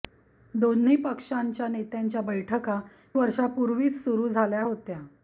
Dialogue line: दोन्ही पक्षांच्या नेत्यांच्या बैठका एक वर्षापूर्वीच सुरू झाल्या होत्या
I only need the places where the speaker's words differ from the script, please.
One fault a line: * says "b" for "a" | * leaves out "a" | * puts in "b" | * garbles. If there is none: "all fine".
* leaves out "एक"